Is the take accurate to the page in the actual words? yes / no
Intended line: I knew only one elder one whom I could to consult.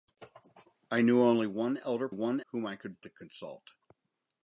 yes